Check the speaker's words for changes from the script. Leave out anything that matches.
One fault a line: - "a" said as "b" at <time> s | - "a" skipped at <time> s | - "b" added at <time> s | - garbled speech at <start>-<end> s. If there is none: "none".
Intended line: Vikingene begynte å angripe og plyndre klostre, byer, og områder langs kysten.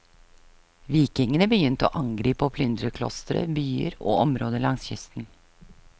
none